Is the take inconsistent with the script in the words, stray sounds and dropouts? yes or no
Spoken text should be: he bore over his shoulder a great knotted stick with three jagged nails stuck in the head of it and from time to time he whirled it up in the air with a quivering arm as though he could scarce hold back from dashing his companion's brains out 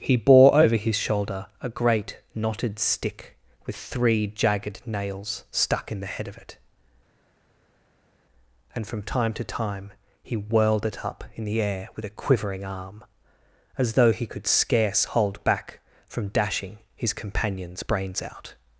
no